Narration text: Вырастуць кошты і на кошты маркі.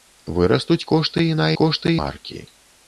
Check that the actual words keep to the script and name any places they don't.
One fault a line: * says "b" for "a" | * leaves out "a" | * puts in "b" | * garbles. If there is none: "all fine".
all fine